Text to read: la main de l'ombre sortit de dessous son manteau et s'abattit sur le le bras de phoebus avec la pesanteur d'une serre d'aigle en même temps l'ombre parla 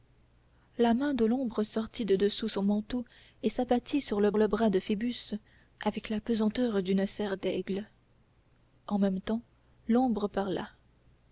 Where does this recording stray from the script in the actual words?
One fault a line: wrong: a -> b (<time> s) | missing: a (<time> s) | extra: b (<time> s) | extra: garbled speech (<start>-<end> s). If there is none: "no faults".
no faults